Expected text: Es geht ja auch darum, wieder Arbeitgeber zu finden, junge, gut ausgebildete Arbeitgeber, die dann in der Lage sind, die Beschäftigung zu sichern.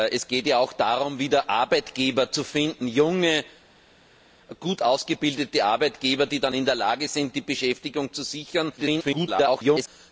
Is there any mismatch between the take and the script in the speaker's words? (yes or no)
yes